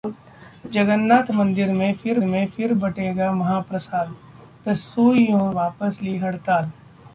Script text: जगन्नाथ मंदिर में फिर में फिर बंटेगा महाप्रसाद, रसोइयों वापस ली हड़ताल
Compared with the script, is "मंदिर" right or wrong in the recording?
right